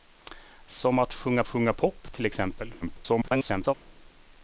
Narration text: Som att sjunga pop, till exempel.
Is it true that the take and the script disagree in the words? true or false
true